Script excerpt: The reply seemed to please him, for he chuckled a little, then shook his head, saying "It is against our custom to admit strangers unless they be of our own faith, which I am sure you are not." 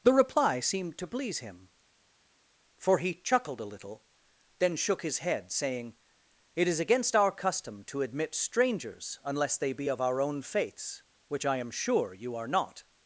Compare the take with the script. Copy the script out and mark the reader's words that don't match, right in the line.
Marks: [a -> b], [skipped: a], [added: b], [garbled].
The reply seemed to please him, for he chuckled a little, then shook his head, saying "It is against our custom to admit strangers unless they be of our own [faith, -> faiths] which I am sure you are not."